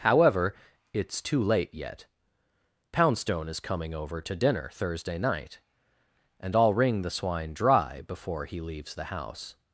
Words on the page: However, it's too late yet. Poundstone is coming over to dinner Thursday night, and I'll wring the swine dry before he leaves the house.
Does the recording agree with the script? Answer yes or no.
yes